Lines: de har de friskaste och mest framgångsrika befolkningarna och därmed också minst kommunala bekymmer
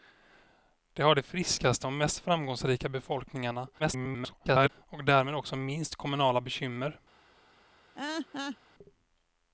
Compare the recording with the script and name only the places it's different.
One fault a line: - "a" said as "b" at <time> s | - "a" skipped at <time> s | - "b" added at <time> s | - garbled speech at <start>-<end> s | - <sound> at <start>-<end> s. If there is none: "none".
- garbled speech at 3.8-4.7 s
- laugh at 7.9-8.6 s